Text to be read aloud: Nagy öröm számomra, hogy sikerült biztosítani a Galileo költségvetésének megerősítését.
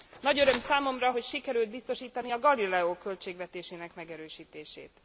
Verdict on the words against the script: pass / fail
pass